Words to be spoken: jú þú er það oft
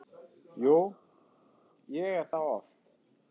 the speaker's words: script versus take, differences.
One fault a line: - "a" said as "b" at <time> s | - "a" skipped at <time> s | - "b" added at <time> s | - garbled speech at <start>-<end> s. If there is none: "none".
- "þú" said as "ég" at 2.0 s